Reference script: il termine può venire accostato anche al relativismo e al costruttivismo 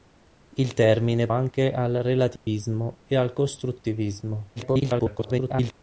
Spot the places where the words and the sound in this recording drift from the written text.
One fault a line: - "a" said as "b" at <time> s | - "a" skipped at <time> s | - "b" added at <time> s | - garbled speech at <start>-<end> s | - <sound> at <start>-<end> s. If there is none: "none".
- "può venire accostato" skipped at 1.3 s
- dropout at 2.4-2.5 s
- garbled speech at 4.6-5.7 s